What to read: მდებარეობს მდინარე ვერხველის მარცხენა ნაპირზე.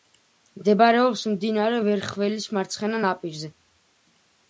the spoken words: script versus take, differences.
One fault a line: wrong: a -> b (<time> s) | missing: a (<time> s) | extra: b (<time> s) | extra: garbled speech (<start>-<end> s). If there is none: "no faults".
no faults